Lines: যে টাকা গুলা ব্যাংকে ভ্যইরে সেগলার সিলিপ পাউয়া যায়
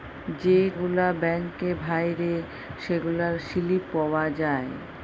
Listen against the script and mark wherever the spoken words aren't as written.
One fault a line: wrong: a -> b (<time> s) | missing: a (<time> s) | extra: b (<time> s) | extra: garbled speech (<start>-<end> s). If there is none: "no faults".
missing: টাকা (0.6 s)